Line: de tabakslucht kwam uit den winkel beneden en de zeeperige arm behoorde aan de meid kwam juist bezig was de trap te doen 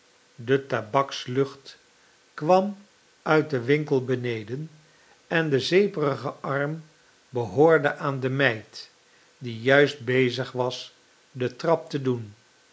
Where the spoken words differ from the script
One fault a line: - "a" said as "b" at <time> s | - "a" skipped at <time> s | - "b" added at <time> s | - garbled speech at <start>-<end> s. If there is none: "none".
- "kwam" said as "die" at 9.4 s